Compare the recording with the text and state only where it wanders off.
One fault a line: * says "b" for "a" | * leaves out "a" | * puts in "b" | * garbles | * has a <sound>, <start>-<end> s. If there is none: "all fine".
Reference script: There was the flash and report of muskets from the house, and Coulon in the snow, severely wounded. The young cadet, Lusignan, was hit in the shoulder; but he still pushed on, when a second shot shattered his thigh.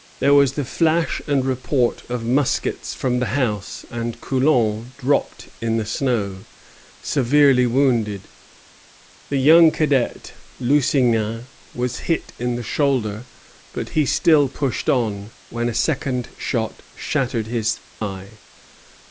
* puts in "dropped"
* has a dropout, 17.9-18.0 s